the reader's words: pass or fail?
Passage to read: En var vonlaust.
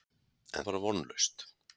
pass